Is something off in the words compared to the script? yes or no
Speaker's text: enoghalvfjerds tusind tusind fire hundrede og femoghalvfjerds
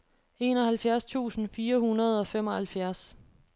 yes